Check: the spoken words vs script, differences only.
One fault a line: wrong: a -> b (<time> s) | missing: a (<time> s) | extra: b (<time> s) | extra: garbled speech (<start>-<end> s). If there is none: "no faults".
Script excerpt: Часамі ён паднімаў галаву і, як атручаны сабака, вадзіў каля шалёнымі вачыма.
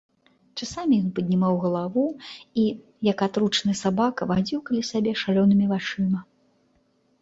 extra: сябе (5.0 s)